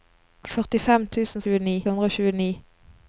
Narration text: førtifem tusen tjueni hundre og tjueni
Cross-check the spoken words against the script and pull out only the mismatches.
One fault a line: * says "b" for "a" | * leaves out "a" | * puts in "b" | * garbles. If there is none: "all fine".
all fine